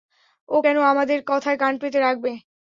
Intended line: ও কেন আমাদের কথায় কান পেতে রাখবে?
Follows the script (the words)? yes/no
yes